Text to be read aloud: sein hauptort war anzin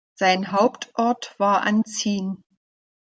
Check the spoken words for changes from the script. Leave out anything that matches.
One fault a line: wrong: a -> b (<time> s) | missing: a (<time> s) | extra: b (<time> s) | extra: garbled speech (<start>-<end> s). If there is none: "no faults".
no faults